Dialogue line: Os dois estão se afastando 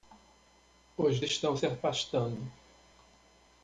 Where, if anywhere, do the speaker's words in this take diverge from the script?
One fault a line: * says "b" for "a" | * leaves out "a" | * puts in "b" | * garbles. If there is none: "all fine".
* leaves out "dois"